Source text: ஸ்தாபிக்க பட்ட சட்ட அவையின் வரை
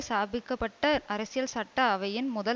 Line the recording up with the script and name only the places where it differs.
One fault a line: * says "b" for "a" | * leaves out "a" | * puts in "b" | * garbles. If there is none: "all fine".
* puts in "அரசியல்"
* says "முதல்" for "வரை"